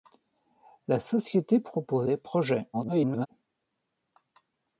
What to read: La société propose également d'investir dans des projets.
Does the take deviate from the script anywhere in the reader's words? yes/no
yes